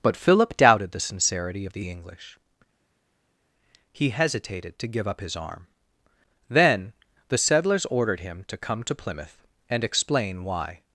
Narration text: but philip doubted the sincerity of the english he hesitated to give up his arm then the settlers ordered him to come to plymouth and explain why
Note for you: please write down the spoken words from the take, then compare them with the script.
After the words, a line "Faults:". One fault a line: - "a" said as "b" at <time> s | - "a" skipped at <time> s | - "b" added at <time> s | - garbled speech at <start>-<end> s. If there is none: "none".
but philip doubted the sincerity of the english he hesitated to give up his arm then the settlers ordered him to come to plymouth and explain why
Faults:
none